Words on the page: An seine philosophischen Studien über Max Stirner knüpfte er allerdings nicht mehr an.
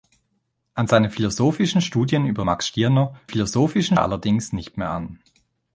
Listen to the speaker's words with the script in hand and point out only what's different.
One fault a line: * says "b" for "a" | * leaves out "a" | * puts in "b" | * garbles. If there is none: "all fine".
* says "philosophischen" for "knüpfte"